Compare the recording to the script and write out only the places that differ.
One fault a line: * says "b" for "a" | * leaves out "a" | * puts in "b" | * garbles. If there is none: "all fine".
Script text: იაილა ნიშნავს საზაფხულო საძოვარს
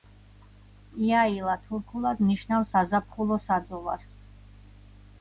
* puts in "თურქულად"